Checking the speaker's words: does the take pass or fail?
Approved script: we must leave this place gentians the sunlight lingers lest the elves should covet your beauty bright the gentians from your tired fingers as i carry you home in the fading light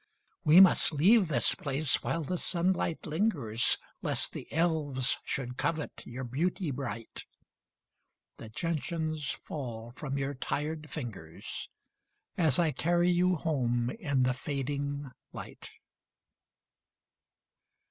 fail